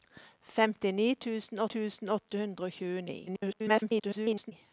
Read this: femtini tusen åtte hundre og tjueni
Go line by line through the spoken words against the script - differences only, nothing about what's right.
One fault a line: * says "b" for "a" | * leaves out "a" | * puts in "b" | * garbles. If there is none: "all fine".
* puts in "tusen"
* garbles